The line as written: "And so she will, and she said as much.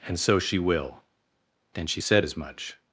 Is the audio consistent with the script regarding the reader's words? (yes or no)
no